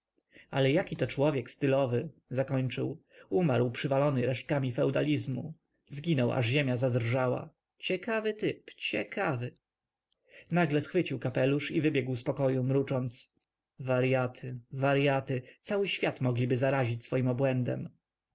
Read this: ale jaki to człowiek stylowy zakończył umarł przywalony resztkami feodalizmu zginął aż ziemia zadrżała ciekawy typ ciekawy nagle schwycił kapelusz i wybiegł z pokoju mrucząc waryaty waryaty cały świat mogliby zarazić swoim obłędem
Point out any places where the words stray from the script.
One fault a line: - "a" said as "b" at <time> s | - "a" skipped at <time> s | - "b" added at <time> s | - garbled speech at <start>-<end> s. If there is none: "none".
none